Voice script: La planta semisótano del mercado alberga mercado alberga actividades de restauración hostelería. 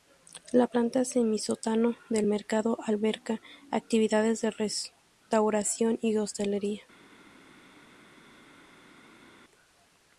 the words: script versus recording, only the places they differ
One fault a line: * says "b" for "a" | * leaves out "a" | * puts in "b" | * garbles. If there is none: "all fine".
* leaves out "mercado alberga"
* puts in "y"